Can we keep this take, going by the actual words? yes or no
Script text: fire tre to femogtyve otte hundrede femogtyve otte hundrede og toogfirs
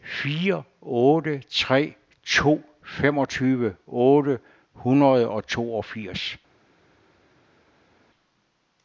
no